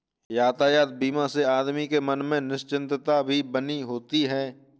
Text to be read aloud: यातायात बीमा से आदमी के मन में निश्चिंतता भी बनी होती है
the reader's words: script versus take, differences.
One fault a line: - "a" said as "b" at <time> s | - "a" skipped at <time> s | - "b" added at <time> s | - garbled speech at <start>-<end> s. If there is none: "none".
none